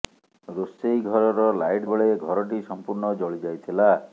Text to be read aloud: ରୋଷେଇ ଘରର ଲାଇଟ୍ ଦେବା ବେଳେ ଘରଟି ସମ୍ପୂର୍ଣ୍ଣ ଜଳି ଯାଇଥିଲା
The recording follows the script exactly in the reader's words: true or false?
false